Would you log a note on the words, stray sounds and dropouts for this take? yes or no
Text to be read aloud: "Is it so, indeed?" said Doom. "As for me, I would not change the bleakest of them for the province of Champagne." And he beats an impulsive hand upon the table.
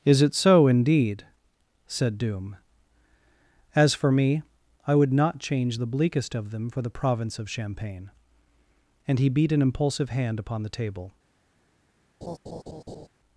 yes